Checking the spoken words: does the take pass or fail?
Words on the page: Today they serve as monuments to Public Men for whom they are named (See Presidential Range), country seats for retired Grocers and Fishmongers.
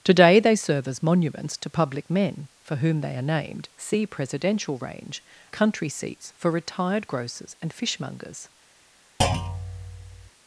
pass